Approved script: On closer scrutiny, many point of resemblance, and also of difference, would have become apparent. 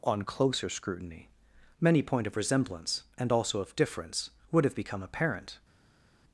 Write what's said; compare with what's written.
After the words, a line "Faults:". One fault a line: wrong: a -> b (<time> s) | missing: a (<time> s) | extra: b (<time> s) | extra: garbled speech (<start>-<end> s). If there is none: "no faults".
On closer scrutiny, many point of resemblance, and also of difference, would have become apparent.
Faults:
no faults